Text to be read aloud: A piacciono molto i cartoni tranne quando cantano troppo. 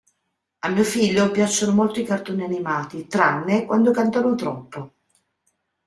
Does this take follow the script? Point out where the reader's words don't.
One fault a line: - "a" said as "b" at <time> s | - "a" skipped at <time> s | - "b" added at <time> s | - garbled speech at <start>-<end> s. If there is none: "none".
- "mio figlio" added at 0.7 s
- "animati" added at 2.4 s